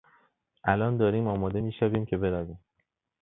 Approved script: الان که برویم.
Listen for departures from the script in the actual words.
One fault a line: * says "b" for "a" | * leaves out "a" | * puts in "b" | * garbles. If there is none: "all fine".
* puts in "داریم آماده میشویم"